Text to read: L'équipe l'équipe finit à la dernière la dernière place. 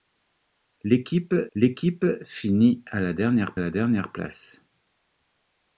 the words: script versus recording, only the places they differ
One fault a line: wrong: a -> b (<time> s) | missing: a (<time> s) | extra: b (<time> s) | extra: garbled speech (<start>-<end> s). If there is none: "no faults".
no faults